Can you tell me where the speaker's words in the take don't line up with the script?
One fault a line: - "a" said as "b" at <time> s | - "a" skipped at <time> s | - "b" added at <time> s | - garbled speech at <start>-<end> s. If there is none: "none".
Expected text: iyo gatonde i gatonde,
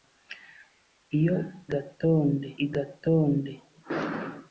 none